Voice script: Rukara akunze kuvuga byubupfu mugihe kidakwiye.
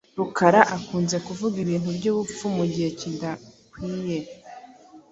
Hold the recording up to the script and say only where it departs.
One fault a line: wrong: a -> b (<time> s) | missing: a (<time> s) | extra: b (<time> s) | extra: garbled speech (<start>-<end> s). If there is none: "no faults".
extra: ibintu (1.6 s)